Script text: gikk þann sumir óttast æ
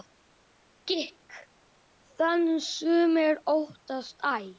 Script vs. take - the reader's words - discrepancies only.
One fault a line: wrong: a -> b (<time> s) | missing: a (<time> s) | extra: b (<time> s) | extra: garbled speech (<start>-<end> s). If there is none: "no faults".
no faults